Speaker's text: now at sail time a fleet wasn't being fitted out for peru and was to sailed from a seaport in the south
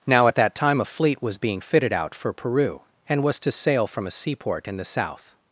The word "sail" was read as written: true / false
false